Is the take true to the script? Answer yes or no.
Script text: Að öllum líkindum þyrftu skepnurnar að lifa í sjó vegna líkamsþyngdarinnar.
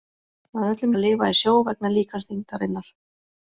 no